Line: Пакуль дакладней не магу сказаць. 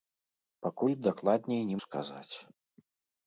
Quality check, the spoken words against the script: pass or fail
fail